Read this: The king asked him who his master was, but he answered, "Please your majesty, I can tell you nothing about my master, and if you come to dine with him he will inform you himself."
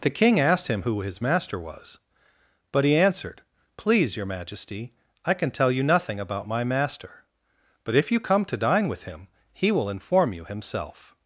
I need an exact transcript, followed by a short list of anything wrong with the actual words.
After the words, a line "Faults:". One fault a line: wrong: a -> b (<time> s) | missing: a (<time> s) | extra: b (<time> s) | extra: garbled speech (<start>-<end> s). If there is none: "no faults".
The king asked him who his master was, but he answered, "Please your majesty, I can tell you nothing about my master, but if you come to dine with him he will inform you himself."
Faults:
wrong: and -> but (7.8 s)